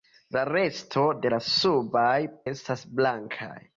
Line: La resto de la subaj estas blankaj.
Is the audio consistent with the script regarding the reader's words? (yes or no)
yes